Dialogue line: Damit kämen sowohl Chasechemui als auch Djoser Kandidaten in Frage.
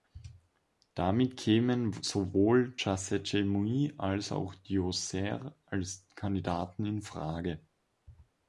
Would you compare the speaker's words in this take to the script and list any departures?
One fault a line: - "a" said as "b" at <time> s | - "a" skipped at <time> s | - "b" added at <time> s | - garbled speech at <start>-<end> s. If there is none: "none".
- "als" added at 5.6 s